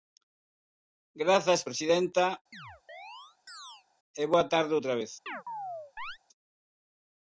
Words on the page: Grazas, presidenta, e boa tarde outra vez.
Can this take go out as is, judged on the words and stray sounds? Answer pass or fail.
fail